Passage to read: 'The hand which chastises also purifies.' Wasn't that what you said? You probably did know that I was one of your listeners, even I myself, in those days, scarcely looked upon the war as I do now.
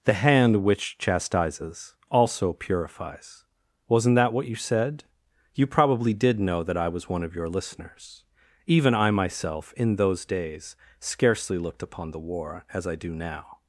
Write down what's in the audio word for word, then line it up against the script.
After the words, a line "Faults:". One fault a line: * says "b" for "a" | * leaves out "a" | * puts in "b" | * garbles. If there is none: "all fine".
'The hand which chastises also purifies.' Wasn't that what you said? You probably did know that I was one of your listeners, even I myself, in those days, scarcely looked upon the war as I do now.
Faults:
all fine